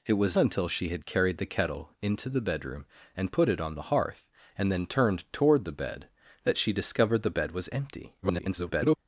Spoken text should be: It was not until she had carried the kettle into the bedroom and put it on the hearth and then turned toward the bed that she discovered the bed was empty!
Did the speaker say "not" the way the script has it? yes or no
no